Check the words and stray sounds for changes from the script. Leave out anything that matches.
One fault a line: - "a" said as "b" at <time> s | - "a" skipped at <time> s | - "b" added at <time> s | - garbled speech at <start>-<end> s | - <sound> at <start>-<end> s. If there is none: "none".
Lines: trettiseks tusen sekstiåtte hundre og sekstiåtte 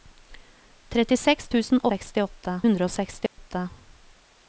- dropout at 3.3-3.4 s